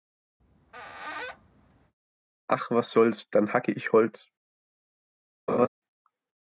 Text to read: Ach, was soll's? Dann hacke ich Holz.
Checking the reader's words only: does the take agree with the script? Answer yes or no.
yes